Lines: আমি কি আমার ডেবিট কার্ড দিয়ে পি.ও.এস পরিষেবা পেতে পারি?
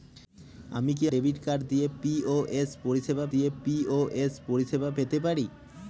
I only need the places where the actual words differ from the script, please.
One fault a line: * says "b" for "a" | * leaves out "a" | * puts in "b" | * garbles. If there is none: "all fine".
* leaves out "আমার"
* puts in "দিয়ে পি.ও.এস পরিষেবা"